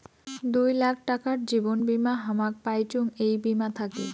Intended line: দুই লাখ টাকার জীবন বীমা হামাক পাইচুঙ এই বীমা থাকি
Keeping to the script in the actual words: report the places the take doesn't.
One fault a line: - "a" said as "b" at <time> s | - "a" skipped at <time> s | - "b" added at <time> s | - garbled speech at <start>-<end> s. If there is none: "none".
none